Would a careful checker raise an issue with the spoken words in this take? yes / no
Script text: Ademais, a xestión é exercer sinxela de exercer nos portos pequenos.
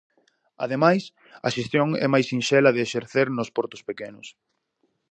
yes